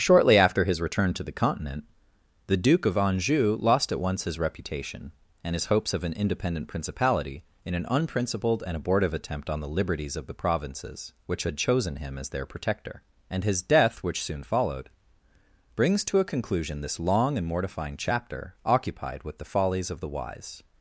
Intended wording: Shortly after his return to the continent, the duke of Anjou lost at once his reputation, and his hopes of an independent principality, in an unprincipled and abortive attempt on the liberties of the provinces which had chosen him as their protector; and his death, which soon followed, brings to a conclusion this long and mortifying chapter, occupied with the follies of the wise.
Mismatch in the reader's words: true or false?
false